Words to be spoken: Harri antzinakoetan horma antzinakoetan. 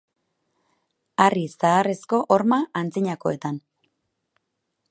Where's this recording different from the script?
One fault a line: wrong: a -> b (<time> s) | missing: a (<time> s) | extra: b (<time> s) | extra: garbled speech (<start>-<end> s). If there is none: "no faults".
wrong: antzinakoetan -> zaharrezko (1.5 s)